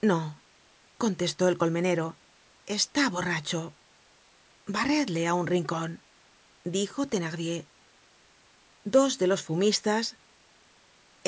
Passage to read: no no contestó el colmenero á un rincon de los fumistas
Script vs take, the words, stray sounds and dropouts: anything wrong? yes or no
yes